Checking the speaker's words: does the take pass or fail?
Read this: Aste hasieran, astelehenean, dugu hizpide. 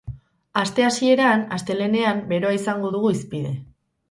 fail